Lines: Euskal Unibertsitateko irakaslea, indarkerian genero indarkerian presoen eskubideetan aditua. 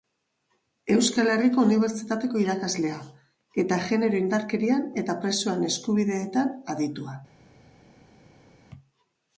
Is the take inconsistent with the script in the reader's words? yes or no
yes